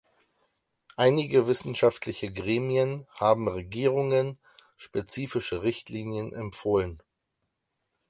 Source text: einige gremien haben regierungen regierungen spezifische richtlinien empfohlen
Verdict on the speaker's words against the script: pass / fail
fail